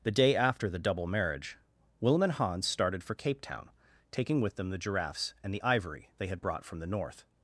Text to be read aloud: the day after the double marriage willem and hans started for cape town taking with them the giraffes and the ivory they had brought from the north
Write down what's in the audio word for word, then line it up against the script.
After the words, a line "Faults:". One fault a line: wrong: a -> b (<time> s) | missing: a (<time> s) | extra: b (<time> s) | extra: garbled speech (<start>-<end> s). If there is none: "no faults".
the day after the double marriage willem and hans started for cape town taking with them the giraffes and the ivory they had brought from the north
Faults:
no faults